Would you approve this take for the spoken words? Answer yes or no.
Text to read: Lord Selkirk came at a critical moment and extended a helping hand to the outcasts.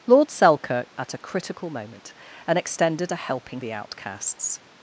no